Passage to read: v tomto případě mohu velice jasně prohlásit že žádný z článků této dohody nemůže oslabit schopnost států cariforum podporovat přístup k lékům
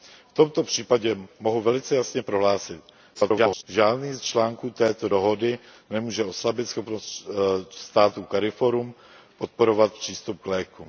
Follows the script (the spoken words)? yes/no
no